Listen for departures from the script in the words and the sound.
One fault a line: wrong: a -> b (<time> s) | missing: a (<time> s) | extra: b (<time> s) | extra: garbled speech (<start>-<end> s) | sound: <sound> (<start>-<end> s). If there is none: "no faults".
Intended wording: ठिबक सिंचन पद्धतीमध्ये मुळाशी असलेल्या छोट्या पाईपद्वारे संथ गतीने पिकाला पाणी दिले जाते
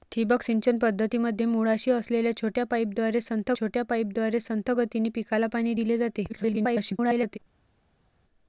extra: छोट्या पाईपद्वारे संथ (3.6 s)
extra: garbled speech (6.3-7.4 s)